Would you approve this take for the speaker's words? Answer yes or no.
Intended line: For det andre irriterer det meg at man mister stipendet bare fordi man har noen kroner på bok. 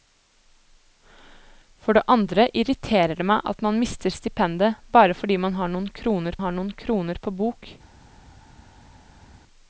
no